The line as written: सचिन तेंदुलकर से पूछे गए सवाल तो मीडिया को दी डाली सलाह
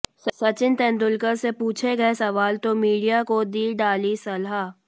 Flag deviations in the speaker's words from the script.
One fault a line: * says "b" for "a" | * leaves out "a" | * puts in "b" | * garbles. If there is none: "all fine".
all fine